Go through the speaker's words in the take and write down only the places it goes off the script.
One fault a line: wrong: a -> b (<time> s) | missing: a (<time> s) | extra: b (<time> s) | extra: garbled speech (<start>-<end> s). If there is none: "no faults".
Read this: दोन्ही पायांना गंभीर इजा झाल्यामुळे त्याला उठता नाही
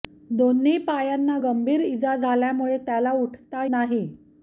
no faults